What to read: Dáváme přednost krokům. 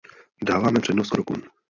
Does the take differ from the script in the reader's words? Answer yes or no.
no